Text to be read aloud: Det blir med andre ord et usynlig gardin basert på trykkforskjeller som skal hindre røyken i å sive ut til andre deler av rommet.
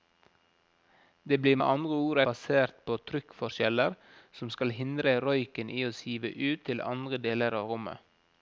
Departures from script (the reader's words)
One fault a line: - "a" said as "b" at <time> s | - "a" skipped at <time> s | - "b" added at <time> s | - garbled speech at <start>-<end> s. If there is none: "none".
- "et usynlig gardin" skipped at 2.2 s